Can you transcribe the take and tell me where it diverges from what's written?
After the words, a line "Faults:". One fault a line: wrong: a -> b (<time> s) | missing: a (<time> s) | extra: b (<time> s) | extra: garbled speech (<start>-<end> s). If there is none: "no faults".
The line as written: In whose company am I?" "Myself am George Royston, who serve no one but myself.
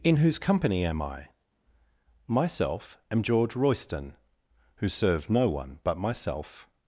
In whose company am I?" "Myself am George Royston, who serve no one but myself.
Faults:
no faults